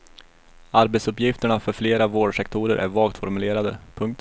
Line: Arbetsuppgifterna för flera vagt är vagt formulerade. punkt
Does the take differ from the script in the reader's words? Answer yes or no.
yes